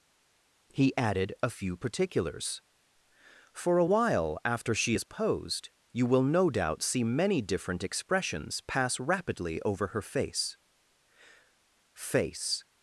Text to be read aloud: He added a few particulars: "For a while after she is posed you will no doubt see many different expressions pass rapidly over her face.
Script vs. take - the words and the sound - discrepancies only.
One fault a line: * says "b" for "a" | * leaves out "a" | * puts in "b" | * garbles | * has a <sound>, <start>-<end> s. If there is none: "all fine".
* puts in "face"